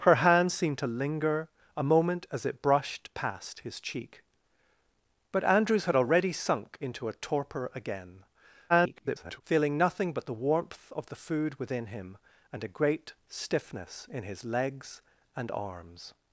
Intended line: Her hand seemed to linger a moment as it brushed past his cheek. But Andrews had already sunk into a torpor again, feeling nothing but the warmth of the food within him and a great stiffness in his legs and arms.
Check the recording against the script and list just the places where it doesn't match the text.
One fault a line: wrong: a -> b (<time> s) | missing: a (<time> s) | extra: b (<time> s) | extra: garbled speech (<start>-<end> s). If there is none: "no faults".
extra: garbled speech (8.7-9.4 s)